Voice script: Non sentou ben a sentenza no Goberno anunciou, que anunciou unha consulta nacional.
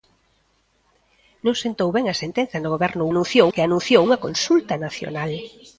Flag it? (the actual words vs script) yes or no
no